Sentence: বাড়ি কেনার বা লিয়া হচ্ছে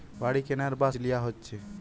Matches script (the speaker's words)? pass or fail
pass